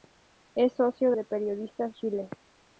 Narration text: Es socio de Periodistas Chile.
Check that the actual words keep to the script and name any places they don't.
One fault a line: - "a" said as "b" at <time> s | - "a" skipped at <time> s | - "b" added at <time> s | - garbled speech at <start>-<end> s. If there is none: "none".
none